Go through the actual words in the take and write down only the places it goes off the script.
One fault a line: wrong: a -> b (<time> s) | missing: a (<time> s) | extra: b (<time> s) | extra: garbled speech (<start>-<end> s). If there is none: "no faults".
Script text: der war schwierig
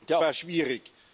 no faults